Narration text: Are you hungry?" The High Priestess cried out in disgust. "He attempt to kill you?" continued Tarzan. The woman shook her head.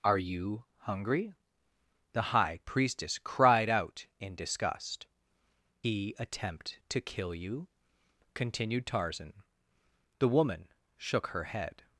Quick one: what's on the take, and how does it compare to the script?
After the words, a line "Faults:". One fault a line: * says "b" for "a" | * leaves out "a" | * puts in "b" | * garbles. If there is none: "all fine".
Are you hungry?" The High Priestess cried out in disgust. "He attempt to kill you?" continued Tarzan. The woman shook her head.
Faults:
all fine